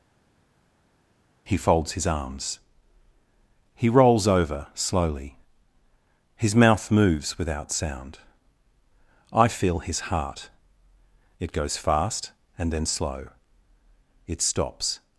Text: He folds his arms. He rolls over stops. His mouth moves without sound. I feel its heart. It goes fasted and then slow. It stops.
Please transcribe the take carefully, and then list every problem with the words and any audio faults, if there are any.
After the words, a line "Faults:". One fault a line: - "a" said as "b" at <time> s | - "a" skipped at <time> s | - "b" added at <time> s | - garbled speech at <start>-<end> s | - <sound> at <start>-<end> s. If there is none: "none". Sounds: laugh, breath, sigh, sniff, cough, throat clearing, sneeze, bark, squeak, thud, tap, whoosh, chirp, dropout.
He folds his arms. He rolls over slowly. His mouth moves without sound. I feel his heart. It goes fast and then slow. It stops.
Faults:
- "stops" said as "slowly" at 4.7 s
- "its" said as "his" at 9.8 s
- "fasted" said as "fast" at 11.8 s